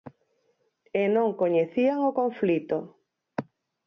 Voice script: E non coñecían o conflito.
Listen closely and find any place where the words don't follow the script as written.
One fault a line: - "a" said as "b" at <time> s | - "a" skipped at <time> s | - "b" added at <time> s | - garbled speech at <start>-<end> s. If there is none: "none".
none